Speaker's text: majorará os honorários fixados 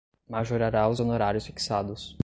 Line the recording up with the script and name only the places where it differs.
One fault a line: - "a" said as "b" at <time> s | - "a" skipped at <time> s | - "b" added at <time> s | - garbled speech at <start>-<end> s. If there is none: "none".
none